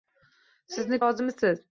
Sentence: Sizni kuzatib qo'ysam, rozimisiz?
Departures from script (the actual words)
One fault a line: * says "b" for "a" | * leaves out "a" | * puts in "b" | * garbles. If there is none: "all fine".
* leaves out "kuzatib qo'ysam"